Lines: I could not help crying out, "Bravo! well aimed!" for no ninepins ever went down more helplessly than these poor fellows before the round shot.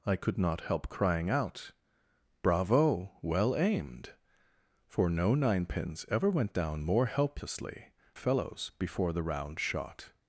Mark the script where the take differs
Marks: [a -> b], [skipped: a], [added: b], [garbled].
I could not help crying out, "Bravo! well aimed!" for no ninepins ever went down more helplessly [skipped: than these poor] fellows before the round shot.